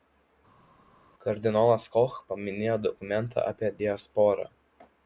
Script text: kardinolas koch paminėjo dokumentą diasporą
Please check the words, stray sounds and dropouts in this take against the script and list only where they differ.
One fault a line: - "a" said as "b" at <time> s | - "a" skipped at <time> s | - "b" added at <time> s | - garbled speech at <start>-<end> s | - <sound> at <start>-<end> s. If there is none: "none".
- "apie" added at 3.5 s